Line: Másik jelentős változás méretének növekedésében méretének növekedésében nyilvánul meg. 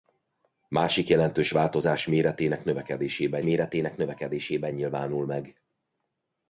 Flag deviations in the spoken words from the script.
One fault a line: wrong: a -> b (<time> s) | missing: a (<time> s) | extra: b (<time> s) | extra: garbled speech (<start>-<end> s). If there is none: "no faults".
no faults